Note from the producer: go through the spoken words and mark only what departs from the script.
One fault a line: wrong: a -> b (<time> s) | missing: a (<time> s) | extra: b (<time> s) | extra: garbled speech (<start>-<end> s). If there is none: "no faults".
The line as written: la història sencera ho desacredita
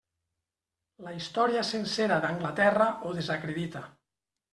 extra: d'anglaterra (2.2 s)